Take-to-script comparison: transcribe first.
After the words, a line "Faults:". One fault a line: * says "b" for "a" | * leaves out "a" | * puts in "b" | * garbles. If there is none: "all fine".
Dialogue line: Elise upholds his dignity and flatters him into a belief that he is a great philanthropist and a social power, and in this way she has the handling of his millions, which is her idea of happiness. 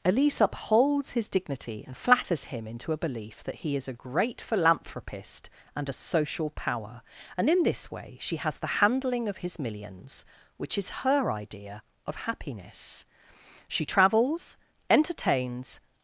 Elise upholds his dignity and flatters him into a belief that he is a great philanthropist and a social power, and in this way she has the handling of his millions, which is her idea of happiness. She travels, entertains
Faults:
* puts in "She travels entertains"